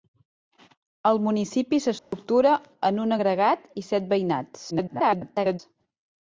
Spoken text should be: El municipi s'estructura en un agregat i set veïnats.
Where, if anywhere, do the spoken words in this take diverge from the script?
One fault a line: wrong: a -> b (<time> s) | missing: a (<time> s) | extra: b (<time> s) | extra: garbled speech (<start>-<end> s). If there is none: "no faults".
extra: garbled speech (4.7-5.6 s)